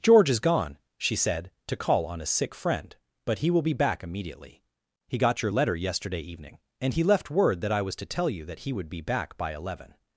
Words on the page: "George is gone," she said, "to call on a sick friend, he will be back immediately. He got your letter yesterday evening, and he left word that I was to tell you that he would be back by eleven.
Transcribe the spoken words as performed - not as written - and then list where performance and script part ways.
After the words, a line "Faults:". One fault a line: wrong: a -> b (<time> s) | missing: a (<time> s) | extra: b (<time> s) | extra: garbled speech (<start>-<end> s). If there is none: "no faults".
"George is gone," she said, "to call on a sick friend, but he will be back immediately. He got your letter yesterday evening, and he left word that I was to tell you that he would be back by eleven.
Faults:
extra: but (3.2 s)